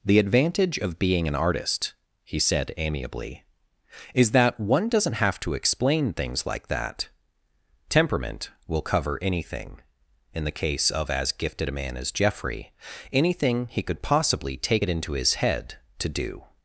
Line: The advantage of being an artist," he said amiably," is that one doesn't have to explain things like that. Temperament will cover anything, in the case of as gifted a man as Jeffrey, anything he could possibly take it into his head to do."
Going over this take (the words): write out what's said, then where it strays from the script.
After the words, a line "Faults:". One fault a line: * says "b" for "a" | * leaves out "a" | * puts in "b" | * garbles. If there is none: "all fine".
The advantage of being an artist," he said amiably," is that one doesn't have to explain things like that. Temperament will cover anything, in the case of as gifted a man as Jeffrey, anything he could possibly take it into his head to do."
Faults:
all fine